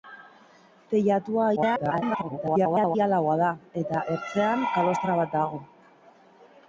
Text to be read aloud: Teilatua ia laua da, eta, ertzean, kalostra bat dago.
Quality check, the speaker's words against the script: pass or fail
fail